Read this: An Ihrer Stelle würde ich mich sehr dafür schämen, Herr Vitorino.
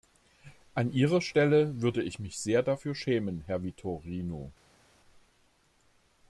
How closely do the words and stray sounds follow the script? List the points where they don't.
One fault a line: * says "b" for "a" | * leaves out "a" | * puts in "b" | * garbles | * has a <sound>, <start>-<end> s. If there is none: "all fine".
all fine